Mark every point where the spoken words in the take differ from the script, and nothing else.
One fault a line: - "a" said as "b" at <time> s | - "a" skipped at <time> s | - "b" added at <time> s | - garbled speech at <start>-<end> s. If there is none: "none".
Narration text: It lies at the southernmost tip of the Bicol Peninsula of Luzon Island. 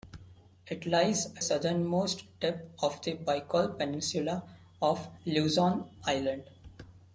- "at the" skipped at 1.4 s